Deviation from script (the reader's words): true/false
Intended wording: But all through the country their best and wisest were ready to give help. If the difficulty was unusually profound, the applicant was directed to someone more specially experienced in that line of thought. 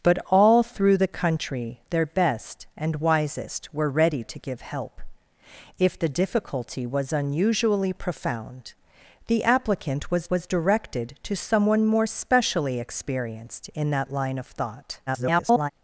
true